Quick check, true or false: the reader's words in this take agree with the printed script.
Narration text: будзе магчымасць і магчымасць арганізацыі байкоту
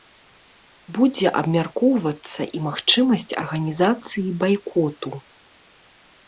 false